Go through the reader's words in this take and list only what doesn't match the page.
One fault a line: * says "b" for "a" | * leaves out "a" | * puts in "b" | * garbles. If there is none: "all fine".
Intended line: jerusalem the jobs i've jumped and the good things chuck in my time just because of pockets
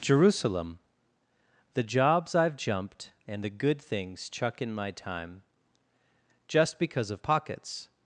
all fine